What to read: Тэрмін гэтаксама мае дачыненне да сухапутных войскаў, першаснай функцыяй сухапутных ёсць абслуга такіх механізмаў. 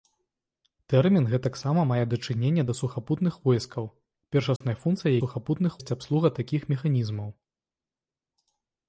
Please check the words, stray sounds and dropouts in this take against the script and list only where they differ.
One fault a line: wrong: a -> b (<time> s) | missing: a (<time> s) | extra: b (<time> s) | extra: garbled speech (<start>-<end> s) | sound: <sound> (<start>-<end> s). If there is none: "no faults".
sound: dropout (4.6-4.6 s)